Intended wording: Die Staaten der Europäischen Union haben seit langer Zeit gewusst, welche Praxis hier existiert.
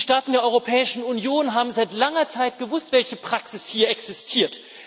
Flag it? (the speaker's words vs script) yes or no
no